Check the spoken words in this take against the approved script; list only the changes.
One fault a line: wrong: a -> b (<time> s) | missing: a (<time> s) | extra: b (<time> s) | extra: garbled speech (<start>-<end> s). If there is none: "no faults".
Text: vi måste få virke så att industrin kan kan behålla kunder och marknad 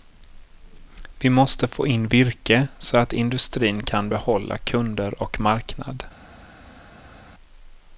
extra: in (1.9 s)
missing: kan (4.1 s)